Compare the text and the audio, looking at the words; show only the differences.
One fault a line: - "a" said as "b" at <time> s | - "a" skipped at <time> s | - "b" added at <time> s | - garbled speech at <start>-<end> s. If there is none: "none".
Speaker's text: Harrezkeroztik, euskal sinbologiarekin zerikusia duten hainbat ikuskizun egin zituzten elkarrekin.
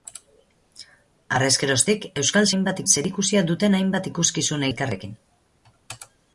- "sinbologiarekin" said as "hainbat" at 2.5 s
- "egin zituzten" skipped at 4.7 s